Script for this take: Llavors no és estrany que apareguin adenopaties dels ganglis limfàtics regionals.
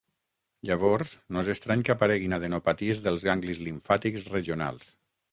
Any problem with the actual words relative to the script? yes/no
no